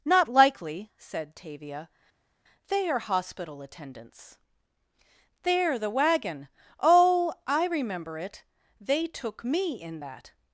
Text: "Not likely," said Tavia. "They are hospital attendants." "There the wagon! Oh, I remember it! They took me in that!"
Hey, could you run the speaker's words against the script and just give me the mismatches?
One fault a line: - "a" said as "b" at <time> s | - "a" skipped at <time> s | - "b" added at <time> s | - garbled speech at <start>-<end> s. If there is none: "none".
none